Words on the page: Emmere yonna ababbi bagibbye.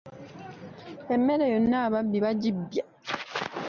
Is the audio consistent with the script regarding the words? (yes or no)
yes